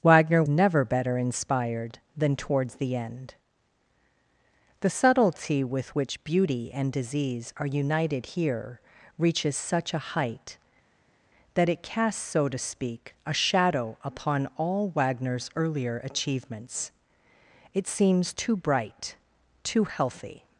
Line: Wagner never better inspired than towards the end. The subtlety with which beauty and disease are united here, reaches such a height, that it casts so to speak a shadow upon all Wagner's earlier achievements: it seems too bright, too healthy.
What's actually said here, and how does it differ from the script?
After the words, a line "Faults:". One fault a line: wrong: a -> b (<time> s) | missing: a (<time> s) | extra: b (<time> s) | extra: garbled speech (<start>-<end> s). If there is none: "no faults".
Wagner never better inspired than towards the end. The subtlety with which beauty and disease are united here, reaches such a height, that it casts so to speak a shadow upon all Wagner's earlier achievements: it seems too bright, too healthy.
Faults:
no faults